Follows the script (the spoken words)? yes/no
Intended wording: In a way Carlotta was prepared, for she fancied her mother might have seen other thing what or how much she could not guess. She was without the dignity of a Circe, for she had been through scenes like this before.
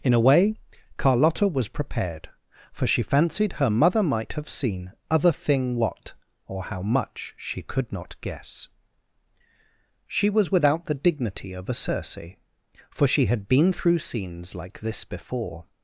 yes